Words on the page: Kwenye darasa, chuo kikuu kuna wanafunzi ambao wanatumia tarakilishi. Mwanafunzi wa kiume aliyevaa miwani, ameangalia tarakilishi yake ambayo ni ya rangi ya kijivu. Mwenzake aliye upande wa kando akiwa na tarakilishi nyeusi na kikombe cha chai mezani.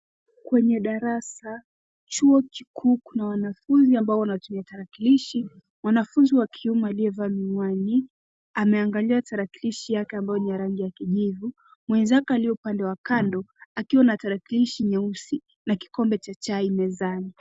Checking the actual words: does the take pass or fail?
pass